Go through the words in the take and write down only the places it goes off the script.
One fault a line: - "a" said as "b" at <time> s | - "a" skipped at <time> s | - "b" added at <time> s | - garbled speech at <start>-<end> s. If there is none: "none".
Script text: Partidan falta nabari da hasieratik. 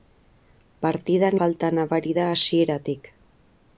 none